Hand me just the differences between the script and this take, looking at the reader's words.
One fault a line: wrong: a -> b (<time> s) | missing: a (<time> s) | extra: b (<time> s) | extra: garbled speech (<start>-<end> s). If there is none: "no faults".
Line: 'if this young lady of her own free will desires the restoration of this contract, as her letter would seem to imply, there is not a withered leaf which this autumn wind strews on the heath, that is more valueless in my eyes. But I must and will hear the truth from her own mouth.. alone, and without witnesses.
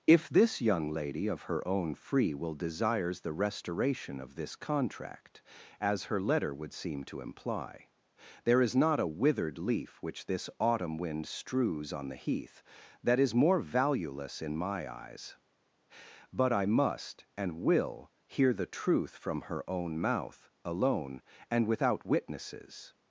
no faults